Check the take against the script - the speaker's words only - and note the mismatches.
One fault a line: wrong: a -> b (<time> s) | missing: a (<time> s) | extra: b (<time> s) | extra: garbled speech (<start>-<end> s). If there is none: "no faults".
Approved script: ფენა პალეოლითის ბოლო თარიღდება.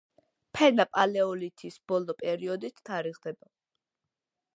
extra: პერიოდით (2.2 s)